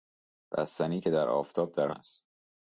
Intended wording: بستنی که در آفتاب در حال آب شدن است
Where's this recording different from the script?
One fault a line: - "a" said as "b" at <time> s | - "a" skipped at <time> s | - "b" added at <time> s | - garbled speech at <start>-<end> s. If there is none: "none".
- "حال آب شدن" skipped at 1.9 s